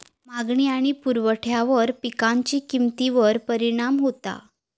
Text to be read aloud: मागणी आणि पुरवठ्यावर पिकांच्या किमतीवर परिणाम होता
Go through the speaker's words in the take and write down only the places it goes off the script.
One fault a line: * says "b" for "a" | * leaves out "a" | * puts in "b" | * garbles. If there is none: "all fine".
all fine